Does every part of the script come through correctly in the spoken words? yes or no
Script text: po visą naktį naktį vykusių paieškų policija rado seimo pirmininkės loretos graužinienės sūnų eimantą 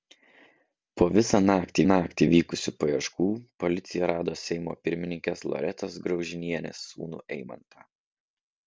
yes